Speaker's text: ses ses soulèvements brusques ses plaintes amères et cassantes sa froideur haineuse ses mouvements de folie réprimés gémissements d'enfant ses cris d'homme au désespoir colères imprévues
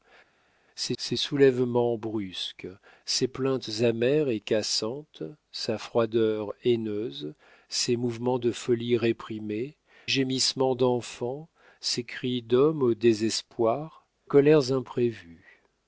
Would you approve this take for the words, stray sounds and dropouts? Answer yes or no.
yes